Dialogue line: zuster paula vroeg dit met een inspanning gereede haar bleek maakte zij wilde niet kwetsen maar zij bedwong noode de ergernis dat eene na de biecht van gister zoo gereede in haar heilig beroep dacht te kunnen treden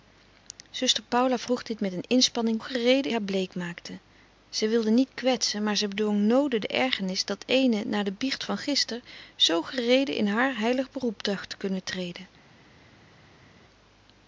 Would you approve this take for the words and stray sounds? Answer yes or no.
yes